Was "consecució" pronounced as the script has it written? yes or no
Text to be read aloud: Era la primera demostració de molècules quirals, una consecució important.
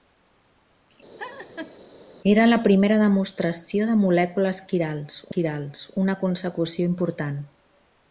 yes